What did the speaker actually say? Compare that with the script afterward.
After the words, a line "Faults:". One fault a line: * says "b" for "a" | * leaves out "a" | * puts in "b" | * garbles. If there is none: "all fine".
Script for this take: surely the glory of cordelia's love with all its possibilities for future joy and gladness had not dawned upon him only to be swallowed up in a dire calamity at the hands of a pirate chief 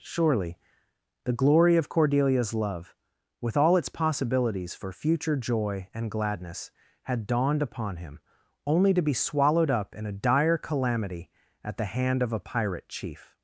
surely the glory of cordelia's love with all its possibilities for future joy and gladness had dawned upon him only to be swallowed up in a dire calamity at the hand of a pirate chief
Faults:
* leaves out "not"
* says "hand" for "hands"